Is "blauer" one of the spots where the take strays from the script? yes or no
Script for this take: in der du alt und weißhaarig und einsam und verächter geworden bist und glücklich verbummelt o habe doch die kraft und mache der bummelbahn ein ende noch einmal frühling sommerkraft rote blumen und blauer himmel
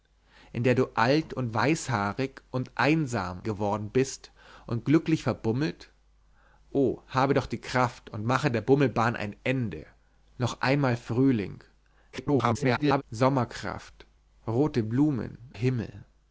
yes